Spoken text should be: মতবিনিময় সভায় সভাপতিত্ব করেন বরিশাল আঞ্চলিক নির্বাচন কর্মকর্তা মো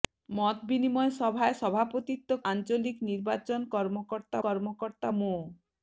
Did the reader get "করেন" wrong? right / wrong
wrong